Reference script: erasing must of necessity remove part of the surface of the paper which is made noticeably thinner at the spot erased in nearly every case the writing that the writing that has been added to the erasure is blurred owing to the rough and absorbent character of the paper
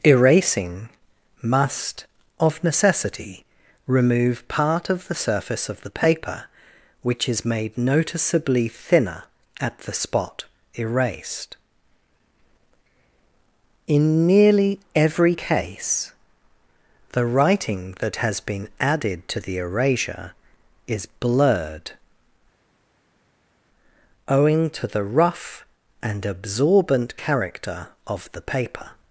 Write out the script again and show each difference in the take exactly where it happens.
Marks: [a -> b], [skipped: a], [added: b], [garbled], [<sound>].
erasing must of necessity remove part of the surface of the paper which is made noticeably thinner at the spot erased in nearly every case the writing that [skipped: the writing that] has been added to the erasure is blurred owing to the rough and absorbent character of the paper